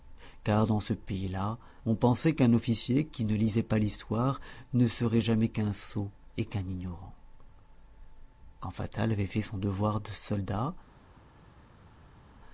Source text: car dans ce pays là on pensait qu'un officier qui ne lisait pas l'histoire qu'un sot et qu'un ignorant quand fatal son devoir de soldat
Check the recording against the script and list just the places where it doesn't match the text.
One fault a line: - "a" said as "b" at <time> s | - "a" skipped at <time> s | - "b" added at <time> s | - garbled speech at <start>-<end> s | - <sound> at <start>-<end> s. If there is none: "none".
- "ne serait jamais" added at 4.7 s
- "avait fait" added at 9.1 s